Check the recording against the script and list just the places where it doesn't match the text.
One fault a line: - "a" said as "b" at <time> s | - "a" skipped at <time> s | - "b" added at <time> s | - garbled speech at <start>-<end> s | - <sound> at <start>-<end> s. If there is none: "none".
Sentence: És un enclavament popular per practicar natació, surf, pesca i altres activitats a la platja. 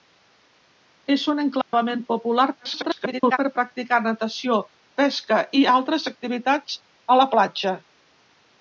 - dropout at 1.6-1.7 s
- garbled speech at 2.6-3.4 s
- "surf" skipped at 4.6 s